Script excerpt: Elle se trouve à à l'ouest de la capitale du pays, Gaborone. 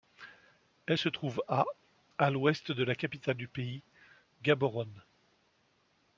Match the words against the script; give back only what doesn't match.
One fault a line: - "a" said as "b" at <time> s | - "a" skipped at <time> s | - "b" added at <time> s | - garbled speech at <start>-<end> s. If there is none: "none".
none